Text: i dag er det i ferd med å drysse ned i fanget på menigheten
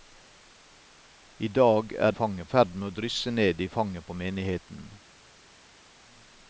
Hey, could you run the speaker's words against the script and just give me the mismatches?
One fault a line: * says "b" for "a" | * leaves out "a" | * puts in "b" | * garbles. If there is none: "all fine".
* says "fanget" for "det"